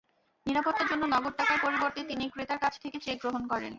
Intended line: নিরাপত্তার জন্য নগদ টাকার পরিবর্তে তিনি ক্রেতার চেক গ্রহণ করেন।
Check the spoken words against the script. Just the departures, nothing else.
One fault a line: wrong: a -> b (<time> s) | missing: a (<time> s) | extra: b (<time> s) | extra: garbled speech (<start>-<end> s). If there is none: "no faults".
extra: কাছ থেকে (2.6 s)